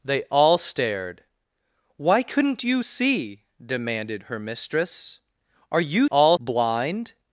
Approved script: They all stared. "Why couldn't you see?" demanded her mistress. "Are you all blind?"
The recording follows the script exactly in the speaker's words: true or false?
true